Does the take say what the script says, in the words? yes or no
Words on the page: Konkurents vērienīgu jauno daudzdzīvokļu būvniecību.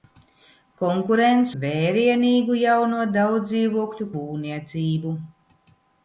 yes